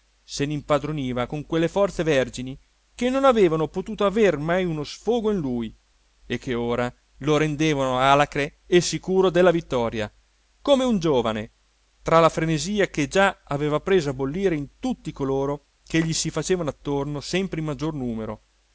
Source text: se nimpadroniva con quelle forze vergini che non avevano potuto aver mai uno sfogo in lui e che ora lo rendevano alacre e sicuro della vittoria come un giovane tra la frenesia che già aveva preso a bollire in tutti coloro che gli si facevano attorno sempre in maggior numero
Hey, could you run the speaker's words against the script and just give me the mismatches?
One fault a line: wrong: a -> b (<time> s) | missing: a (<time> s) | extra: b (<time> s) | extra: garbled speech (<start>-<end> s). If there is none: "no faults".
no faults